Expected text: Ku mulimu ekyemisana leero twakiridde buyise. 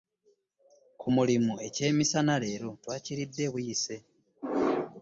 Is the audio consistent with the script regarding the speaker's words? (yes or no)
yes